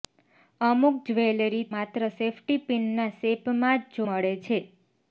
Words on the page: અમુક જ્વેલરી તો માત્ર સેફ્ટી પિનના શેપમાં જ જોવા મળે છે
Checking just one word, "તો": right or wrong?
wrong